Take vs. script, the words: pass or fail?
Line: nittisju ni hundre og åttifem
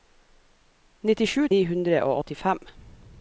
pass